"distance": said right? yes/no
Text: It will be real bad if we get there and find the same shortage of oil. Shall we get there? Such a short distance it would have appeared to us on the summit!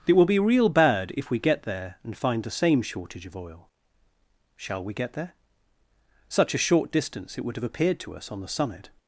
yes